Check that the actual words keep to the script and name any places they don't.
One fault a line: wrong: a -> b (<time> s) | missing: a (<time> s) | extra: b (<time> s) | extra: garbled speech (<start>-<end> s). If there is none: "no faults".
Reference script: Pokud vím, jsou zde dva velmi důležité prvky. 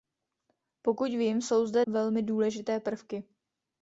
missing: dva (1.9 s)